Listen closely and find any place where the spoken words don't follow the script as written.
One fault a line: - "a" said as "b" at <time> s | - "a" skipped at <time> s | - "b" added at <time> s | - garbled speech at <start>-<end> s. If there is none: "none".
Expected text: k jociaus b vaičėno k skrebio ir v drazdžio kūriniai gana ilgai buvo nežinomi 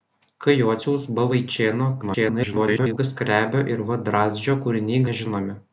- garbled speech at 2.0-3.0 s
- "gana ilgai buvo" skipped at 5.0 s